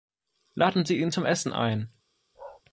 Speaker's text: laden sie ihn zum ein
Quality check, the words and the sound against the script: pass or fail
fail